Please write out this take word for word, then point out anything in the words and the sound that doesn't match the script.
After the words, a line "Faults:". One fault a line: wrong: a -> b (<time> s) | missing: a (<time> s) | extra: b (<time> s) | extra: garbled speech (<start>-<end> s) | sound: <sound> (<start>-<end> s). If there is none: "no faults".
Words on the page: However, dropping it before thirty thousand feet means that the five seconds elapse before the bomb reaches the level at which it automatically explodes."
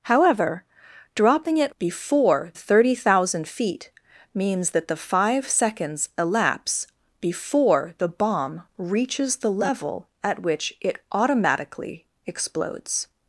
However, dropping it before thirty thousand feet means that the five seconds elapse before the bomb reaches the level at which it automatically explodes."
Faults:
no faults